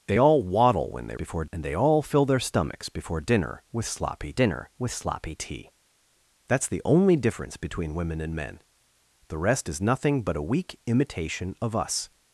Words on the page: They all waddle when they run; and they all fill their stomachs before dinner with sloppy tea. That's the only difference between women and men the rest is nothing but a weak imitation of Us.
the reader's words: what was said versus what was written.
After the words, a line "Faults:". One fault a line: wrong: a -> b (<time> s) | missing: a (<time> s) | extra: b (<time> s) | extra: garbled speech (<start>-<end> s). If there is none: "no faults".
They all waddle when they before; and they all fill their stomachs before dinner with sloppy dinner with sloppy tea. That's the only difference between women and men the rest is nothing but a weak imitation of Us.
Faults:
wrong: run -> before (1.1 s)
extra: dinner with sloppy (4.3 s)